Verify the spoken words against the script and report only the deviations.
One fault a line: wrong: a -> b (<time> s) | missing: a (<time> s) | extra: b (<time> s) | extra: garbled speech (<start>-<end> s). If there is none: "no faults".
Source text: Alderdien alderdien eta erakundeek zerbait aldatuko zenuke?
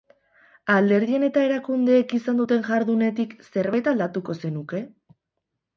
missing: alderdien (1.2 s)
extra: izan duten jardunetik (2.2 s)